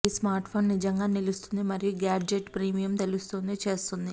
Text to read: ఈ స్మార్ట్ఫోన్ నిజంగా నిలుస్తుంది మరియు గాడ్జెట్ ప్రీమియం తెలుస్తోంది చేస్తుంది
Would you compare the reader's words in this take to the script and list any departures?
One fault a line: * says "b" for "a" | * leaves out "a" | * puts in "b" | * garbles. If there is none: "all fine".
all fine